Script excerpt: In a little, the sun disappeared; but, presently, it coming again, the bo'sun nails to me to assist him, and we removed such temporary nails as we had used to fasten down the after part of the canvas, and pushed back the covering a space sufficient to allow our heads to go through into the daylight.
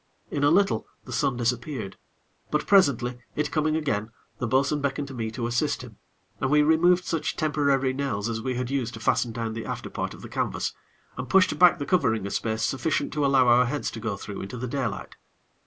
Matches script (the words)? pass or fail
fail